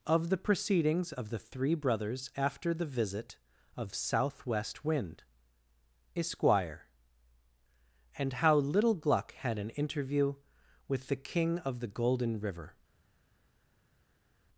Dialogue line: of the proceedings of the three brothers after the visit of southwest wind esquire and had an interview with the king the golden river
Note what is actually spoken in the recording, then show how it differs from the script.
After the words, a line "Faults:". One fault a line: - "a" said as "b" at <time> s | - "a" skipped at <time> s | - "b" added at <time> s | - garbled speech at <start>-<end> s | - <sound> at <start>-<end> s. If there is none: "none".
of the proceedings of the three brothers after the visit of southwest wind esquire and how little gluck had an interview with the king of the golden river
Faults:
- "how little gluck" added at 8.3 s
- "of" added at 11.6 s